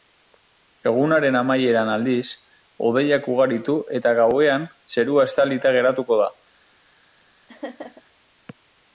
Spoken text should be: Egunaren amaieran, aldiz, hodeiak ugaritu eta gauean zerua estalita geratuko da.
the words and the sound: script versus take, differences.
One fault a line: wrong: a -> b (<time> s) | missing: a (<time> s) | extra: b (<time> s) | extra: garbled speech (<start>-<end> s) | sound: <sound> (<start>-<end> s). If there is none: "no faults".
sound: laugh (7.5-8.0 s)